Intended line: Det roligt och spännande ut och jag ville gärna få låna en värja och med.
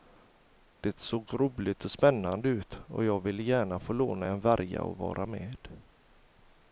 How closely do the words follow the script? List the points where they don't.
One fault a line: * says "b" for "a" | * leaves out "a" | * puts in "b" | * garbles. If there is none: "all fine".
* puts in "såg"
* puts in "vara"